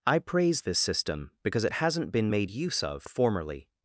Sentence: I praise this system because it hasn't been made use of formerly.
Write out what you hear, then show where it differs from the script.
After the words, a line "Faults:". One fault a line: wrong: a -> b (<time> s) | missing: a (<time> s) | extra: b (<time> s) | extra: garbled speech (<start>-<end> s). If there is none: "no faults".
I praise this system because it hasn't been made use of formerly.
Faults:
no faults